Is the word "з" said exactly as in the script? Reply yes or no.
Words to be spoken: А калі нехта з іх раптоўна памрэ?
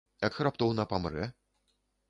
no